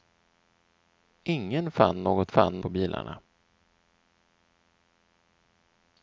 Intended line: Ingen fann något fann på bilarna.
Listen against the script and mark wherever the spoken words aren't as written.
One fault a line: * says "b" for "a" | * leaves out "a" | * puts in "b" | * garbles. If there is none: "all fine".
all fine